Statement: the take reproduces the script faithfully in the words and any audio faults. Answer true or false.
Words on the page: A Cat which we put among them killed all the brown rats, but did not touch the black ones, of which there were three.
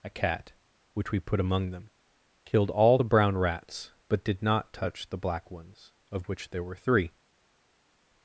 true